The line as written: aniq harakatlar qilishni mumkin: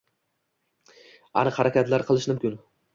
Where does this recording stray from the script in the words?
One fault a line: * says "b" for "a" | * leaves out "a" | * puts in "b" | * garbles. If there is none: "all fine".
all fine